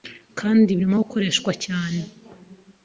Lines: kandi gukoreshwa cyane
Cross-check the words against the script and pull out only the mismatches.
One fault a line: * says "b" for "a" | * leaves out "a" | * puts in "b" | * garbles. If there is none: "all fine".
* puts in "birimo"